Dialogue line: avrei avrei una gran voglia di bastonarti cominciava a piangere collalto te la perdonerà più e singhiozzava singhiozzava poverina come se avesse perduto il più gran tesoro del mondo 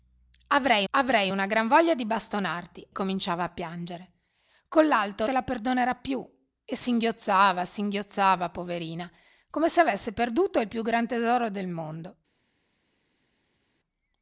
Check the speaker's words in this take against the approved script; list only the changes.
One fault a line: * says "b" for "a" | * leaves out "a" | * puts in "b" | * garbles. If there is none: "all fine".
all fine